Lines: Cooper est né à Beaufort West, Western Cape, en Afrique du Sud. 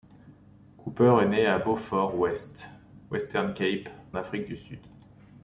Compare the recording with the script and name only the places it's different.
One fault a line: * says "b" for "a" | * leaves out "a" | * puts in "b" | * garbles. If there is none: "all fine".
* leaves out "en"